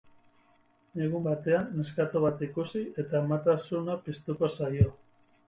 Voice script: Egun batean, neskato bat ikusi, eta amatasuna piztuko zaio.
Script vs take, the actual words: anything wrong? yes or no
no